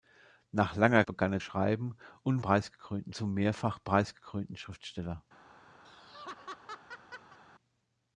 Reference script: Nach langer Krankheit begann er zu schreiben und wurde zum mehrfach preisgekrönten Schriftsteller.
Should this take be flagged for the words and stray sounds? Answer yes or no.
yes